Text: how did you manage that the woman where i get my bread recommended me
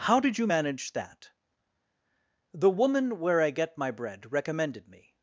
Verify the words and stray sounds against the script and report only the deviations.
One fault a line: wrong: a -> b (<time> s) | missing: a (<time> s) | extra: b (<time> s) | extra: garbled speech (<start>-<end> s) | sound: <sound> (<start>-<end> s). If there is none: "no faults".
no faults